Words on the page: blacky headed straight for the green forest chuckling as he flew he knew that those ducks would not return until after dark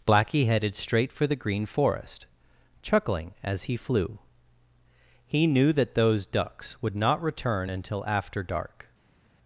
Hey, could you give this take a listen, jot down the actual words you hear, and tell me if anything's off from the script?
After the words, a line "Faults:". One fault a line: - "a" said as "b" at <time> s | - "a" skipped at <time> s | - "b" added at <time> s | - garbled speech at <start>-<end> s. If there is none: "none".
blacky headed straight for the green forest chuckling as he flew he knew that those ducks would not return until after dark
Faults:
none